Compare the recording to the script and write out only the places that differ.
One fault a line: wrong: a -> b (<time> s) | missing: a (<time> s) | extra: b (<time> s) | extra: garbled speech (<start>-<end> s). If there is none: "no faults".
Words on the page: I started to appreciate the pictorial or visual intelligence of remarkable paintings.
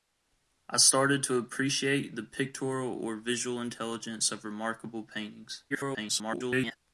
extra: garbled speech (5.7-6.8 s)